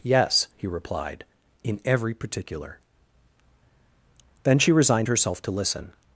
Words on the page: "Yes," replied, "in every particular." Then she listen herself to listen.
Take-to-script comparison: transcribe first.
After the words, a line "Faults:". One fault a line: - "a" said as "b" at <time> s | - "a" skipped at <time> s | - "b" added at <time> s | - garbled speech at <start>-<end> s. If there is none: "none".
"Yes," he replied, "in every particular." Then she resigned herself to listen.
Faults:
- "he" added at 0.6 s
- "listen" said as "resigned" at 4.7 s